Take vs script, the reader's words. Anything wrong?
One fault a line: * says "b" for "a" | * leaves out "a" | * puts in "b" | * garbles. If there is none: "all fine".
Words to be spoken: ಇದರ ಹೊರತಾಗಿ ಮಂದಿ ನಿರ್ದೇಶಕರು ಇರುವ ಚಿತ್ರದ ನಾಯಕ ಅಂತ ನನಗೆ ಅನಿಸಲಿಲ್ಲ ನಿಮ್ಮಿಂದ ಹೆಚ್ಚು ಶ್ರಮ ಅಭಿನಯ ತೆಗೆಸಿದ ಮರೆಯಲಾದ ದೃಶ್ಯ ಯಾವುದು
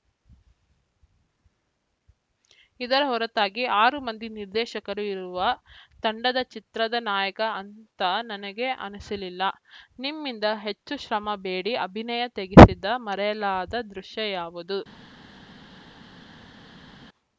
* puts in "ಆರು"
* puts in "ತಂಡದ"
* puts in "ಬೇಡಿ"